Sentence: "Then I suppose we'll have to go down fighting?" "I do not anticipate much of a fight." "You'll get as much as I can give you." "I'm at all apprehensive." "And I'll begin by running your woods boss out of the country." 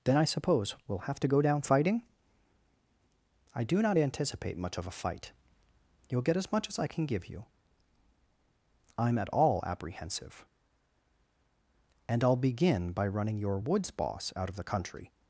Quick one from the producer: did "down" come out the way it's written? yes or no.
yes